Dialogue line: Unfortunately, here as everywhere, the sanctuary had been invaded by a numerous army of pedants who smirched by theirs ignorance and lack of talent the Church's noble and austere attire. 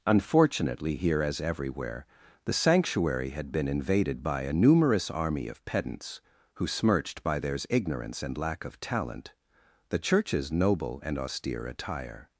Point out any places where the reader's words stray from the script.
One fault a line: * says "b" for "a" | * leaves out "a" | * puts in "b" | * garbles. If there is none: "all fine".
all fine